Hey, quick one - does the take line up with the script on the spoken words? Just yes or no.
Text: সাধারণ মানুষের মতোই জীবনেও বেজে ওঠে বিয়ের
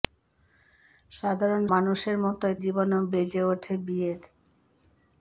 yes